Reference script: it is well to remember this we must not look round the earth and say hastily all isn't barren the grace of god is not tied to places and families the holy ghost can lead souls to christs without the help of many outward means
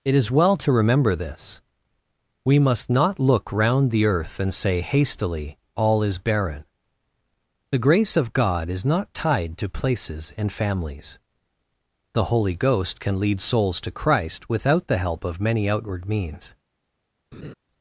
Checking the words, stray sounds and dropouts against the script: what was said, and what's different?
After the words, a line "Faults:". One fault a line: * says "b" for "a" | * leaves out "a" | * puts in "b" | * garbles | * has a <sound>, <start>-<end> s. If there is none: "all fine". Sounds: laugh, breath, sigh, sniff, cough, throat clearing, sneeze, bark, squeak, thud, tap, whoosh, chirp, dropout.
it is well to remember this we must not look round the earth and say hastily all is barren the grace of god is not tied to places and families the holy ghost can lead souls to christ without the help of many outward means
Faults:
* says "is" for "isn't"
* says "christ" for "christs"
* has a laugh, 17.3-17.5 s